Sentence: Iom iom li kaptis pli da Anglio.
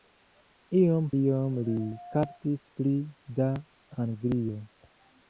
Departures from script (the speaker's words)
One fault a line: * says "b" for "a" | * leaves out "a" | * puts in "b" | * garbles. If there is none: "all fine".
all fine